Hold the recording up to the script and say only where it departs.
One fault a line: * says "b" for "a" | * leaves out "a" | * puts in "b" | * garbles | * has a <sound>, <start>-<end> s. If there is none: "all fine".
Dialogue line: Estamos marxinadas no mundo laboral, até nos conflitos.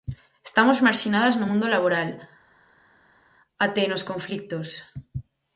all fine